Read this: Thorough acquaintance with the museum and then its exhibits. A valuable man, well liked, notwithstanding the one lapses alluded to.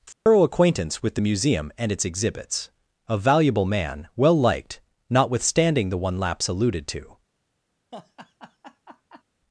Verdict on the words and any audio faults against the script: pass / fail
fail